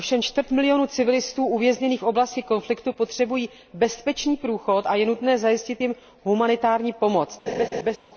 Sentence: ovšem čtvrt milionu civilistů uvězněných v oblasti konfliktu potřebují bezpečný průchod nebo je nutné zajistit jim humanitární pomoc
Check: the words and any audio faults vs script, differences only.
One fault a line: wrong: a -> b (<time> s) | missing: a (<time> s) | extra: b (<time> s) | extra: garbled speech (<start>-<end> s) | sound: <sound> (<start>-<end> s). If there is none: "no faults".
wrong: nebo -> a (4.9 s)
sound: laugh (7.5-8.0 s)